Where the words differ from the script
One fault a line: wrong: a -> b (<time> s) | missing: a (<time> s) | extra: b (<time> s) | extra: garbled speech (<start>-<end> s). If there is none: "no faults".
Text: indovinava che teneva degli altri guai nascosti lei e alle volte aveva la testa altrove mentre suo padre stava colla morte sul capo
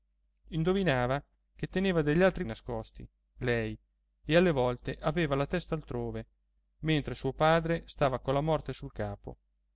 missing: guai (2.4 s)